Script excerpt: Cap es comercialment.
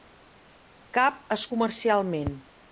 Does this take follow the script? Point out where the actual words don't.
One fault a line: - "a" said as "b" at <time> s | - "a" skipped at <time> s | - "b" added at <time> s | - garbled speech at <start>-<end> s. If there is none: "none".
none